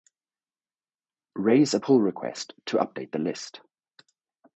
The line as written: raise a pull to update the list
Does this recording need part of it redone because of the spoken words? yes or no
yes